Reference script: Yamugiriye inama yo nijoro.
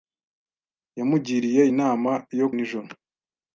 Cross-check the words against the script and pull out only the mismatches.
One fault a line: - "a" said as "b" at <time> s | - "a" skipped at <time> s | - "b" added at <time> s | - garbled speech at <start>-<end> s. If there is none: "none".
none